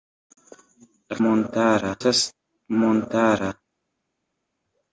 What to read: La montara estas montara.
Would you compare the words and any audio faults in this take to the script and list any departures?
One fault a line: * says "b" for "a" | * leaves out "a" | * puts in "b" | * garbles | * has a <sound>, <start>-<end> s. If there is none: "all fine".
all fine